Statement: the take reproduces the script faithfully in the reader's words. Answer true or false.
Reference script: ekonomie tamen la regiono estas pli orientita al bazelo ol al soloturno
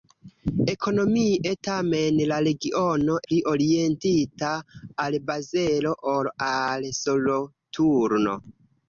false